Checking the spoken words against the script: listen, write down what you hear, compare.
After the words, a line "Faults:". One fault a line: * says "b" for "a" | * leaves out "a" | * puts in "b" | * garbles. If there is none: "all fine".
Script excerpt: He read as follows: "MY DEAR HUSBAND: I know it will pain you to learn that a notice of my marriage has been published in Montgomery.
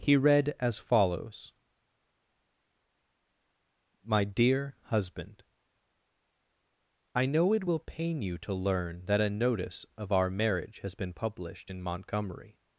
He read as follows: "MY DEAR HUSBAND: I know it will pain you to learn that a notice of our marriage has been published in Montgomery.
Faults:
* says "our" for "my"